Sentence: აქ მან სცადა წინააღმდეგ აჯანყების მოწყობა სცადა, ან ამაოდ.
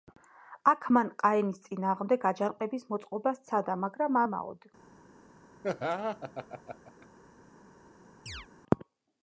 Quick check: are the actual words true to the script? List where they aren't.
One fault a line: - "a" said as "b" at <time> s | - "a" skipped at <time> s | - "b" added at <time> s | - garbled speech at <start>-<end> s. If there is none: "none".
- "სცადა" said as "ყაენის" at 1.2 s
- "ან" said as "მაგრამ" at 3.9 s